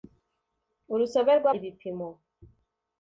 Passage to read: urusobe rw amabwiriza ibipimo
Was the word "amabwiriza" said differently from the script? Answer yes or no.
yes